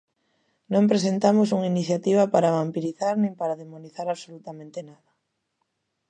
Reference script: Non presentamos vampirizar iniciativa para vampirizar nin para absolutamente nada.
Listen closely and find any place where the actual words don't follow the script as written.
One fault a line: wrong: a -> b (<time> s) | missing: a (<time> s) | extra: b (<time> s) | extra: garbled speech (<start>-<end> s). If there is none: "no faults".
wrong: vampirizar -> unha (1.6 s)
extra: demonizar (3.6 s)